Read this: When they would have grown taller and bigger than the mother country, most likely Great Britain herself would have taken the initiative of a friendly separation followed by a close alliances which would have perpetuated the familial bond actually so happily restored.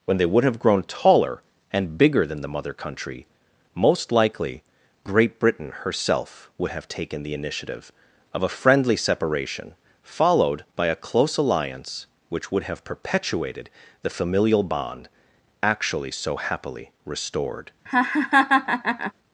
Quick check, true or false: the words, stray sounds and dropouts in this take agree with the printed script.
false